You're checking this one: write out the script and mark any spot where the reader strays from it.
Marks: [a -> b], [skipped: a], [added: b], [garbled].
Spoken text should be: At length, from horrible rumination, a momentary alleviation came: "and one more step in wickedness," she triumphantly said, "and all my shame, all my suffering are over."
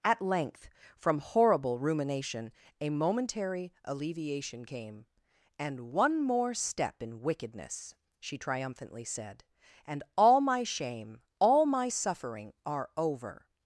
At length, from horrible rumination, a momentary alleviation came: "and one more step in wickedness," she triumphantly said, "and all my shame, all my suffering are over."